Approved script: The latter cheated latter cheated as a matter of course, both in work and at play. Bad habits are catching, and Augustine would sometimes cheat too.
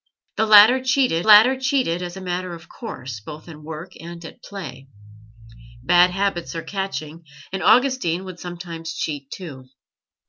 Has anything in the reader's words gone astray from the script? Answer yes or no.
no